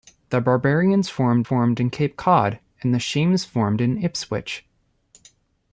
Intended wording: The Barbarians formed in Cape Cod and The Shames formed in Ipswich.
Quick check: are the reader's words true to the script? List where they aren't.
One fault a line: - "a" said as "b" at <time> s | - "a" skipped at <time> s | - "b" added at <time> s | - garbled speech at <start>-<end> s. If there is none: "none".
- "formed" added at 1.4 s